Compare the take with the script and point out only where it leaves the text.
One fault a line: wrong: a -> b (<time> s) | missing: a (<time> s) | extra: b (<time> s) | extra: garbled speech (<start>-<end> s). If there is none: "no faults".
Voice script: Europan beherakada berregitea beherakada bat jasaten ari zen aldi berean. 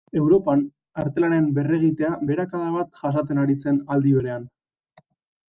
wrong: beherakada -> artelanen (1.0 s)